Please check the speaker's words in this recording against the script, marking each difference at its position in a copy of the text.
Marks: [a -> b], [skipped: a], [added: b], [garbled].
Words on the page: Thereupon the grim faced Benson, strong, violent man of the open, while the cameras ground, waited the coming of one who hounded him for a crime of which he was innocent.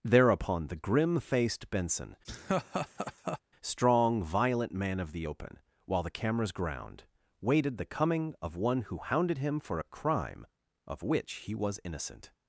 Thereupon the grim faced Benson, strong, violent man of the open, while the cameras ground, waited the coming of one who hounded him for a crime of which he was innocent.